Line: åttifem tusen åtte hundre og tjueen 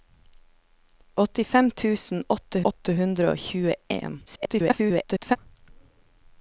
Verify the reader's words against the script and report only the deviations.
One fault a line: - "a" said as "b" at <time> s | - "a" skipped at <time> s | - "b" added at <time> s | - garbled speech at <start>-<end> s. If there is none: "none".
- "åtte" added at 2.7 s
- garbled speech at 4.3-5.4 s